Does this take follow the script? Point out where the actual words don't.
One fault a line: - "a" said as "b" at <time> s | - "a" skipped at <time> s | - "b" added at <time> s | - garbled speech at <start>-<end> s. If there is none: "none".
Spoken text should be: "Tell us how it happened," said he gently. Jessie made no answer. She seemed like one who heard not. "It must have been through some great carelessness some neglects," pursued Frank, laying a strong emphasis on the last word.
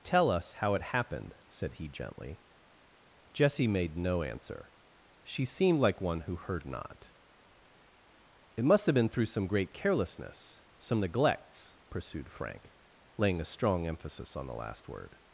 none